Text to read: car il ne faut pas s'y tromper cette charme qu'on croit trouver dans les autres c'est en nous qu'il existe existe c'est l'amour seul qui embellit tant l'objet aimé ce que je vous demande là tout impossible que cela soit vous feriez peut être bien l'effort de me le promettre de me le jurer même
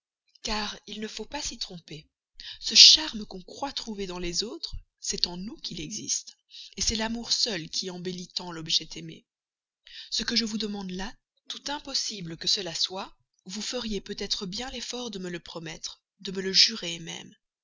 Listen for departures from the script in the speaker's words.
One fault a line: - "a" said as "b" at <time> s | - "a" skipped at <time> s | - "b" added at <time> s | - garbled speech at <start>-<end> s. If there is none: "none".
- "cette" said as "ce" at 2.6 s
- "existe" skipped at 6.4 s